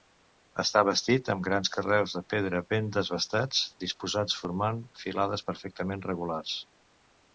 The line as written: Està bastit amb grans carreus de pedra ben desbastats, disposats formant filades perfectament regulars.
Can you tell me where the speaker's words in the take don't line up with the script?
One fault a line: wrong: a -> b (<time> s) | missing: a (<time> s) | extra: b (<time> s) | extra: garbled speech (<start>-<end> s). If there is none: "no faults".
no faults